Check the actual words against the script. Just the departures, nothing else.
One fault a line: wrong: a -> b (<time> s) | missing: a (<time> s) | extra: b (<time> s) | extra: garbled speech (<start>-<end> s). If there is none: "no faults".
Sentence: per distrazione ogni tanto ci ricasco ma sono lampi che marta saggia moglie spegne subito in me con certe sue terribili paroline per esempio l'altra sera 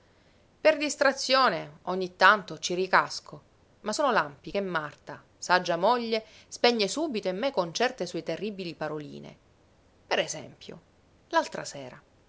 no faults